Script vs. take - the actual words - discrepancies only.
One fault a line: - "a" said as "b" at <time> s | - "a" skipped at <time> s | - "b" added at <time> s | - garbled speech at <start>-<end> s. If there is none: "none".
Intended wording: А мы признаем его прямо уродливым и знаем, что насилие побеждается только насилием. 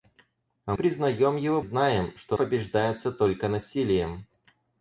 - "мы" skipped at 0.7 s
- "прямо уродливым и" skipped at 1.6 s
- "насилие" skipped at 2.4 s